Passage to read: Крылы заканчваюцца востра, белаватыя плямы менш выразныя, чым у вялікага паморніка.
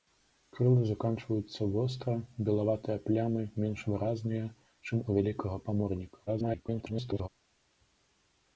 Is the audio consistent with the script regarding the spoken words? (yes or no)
no